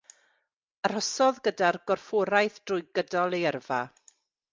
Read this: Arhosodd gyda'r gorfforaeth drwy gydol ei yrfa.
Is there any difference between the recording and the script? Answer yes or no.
no